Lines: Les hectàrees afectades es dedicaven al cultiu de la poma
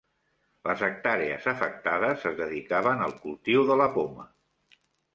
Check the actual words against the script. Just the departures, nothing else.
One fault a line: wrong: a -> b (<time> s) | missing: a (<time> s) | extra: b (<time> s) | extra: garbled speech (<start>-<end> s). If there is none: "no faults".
no faults